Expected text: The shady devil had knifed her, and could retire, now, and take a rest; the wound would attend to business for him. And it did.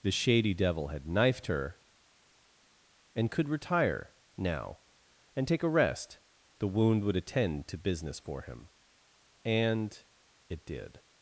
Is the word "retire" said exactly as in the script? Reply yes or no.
yes